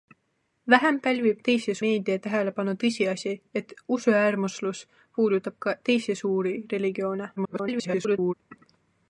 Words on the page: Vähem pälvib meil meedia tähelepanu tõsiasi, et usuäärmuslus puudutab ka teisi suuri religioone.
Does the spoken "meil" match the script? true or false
false